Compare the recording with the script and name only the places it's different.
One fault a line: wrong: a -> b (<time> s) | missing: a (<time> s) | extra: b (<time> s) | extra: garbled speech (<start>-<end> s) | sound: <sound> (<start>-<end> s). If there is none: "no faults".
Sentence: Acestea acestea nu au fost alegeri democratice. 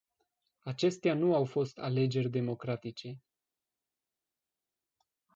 missing: acestea (1.1 s)